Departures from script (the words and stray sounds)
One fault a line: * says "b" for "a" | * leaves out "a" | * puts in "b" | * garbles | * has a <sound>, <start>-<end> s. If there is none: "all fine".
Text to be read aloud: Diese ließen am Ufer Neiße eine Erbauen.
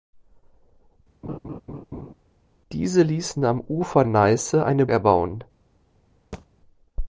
* has a laugh, 1.2-2.1 s
* has a thud, 6.3-6.5 s